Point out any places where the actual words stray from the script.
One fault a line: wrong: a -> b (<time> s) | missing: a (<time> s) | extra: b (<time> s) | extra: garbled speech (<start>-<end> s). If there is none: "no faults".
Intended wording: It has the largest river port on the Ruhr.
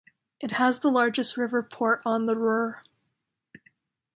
no faults